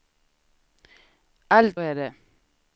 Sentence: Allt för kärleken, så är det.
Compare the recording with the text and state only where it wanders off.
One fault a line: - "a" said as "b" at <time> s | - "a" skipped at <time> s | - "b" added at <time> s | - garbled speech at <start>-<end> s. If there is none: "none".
- "för kärleken så" skipped at 1.8 s